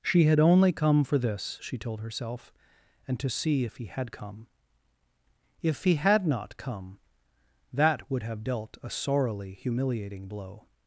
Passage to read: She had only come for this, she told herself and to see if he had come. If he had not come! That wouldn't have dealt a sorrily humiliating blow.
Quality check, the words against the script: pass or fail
fail